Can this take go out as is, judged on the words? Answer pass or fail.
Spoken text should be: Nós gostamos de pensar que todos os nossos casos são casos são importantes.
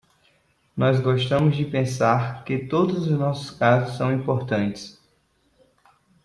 fail